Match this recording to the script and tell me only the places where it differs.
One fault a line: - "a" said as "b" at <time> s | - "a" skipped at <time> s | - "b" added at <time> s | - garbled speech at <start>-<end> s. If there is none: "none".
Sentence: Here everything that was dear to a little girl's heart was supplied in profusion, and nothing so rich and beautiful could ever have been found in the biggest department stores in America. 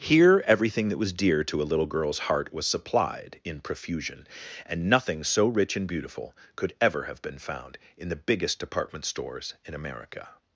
none